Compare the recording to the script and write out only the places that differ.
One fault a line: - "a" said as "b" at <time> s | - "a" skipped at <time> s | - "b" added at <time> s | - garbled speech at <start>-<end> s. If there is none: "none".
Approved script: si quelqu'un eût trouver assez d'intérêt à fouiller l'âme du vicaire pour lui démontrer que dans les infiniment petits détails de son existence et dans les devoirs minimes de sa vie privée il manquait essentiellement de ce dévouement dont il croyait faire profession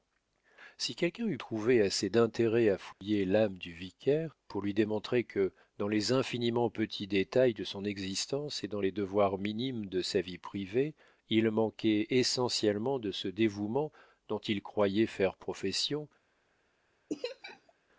none